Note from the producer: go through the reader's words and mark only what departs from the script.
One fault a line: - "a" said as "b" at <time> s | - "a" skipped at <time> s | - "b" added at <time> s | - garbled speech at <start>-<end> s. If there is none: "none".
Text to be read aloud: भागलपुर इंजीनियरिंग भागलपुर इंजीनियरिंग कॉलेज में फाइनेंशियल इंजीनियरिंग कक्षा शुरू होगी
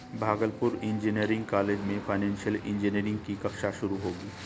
- "भागलपुर इंजीनियरिंग" skipped at 1.5 s
- "की" added at 3.2 s